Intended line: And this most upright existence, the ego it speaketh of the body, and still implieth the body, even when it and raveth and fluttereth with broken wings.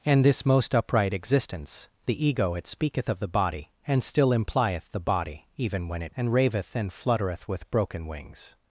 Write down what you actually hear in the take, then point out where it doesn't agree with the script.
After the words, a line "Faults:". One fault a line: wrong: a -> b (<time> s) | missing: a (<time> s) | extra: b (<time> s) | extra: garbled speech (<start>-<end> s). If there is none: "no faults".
And this most upright existence, the ego it speaketh of the body, and still implieth the body, even when it and raveth and fluttereth with broken wings.
Faults:
no faults